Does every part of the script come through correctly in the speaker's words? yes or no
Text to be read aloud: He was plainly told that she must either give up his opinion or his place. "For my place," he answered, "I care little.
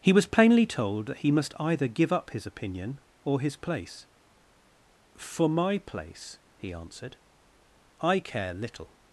no